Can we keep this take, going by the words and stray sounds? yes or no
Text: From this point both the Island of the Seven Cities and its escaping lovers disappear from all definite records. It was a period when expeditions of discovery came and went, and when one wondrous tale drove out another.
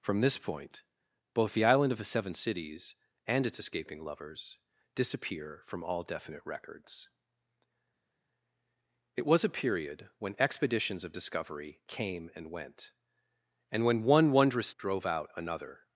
no